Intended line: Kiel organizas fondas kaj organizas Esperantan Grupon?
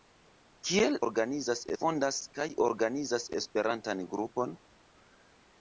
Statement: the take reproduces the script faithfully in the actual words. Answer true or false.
true